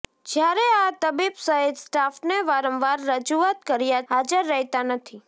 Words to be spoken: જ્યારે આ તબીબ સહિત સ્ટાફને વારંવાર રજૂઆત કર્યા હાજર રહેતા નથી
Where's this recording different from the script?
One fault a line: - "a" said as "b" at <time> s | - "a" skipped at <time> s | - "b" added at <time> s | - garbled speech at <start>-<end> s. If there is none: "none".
none